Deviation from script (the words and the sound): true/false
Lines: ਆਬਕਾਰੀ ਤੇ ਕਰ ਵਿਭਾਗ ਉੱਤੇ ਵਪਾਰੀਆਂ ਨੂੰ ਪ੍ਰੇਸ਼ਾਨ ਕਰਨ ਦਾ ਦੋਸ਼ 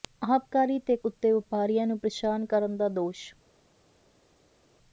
true